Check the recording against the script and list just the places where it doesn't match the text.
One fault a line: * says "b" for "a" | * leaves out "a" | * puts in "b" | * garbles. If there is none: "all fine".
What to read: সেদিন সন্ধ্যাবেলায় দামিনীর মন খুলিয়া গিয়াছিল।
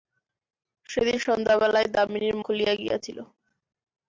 * leaves out "মন"